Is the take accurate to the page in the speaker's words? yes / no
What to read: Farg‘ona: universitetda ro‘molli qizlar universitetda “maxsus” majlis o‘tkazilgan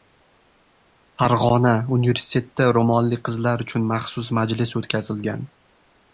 no